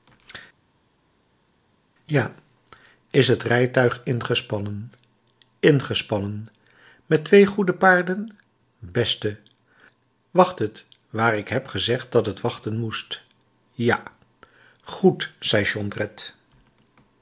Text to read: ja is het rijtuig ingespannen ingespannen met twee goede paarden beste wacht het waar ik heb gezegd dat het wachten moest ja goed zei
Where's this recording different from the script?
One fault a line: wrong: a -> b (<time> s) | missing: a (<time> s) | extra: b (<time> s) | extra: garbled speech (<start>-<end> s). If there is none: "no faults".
no faults